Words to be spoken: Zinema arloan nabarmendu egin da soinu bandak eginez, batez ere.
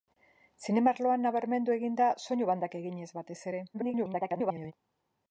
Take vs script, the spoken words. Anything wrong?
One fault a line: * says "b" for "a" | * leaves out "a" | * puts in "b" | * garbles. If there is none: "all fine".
* garbles